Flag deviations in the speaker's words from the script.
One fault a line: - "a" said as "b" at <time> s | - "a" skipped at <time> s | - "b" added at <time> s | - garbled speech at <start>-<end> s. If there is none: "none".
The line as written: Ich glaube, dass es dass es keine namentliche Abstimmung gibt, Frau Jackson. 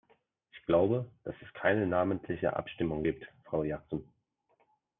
- "dass es" skipped at 1.5 s